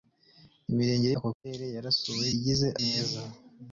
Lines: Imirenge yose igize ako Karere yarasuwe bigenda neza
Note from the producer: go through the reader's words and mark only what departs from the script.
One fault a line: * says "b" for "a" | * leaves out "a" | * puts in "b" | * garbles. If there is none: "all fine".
* leaves out "yose igize"
* says "igize" for "bigenda"